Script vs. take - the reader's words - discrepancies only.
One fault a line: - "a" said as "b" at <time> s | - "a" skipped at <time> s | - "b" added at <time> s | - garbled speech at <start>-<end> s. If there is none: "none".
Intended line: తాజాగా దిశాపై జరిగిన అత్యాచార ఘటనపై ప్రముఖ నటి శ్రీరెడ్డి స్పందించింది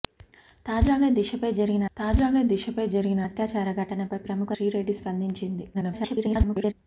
- "తాజాగా దిశాపై జరిగిన" added at 2.0 s
- "నటి" skipped at 4.5 s
- garbled speech at 5.7-6.7 s